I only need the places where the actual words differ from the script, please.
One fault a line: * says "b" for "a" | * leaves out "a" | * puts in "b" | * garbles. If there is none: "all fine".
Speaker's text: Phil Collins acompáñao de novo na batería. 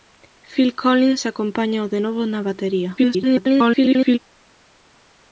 * garbles